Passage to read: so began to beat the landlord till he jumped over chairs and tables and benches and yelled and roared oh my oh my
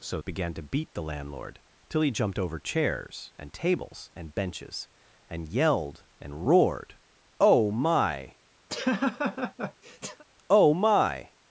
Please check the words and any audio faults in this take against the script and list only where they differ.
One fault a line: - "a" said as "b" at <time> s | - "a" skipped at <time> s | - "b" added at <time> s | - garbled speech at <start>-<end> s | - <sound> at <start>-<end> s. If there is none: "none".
- laugh at 8.7-10.2 s